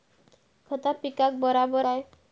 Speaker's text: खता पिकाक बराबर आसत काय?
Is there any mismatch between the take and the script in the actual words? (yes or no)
yes